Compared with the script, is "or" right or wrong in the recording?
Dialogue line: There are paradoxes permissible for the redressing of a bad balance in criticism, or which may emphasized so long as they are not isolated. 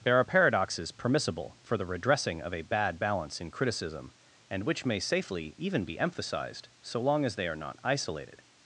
wrong